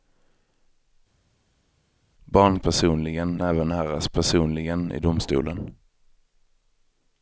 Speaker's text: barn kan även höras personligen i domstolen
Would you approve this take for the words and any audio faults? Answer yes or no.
no